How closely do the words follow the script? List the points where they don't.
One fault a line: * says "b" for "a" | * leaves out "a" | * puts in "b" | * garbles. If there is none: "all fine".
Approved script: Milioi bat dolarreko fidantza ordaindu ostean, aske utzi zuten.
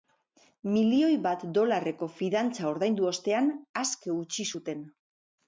all fine